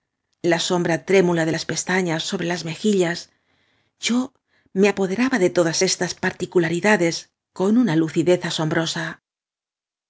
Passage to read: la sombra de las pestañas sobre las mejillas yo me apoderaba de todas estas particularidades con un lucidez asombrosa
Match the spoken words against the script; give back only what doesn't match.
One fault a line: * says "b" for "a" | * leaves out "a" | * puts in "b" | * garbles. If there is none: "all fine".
* puts in "trémula"
* says "una" for "un"